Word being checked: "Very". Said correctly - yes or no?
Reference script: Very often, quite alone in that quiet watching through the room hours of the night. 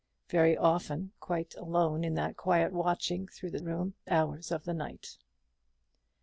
yes